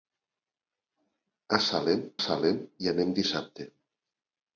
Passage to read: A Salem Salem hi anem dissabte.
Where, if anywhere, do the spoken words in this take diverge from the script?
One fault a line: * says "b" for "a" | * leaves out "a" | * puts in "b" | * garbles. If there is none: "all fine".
all fine